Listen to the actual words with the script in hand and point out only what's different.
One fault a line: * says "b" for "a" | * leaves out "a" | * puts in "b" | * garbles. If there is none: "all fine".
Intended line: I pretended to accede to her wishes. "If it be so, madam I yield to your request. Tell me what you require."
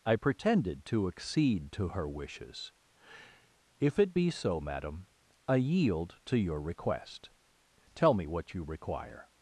all fine